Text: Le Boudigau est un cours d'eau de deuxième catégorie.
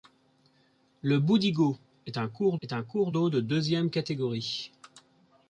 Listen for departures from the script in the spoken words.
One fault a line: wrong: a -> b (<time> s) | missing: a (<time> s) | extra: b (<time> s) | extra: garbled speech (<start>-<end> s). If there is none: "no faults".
extra: est un cours (2.6 s)